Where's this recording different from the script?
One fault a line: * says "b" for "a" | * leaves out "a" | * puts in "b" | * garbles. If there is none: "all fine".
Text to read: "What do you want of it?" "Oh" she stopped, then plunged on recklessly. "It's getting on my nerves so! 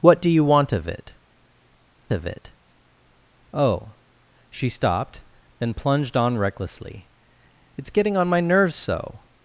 * puts in "of it"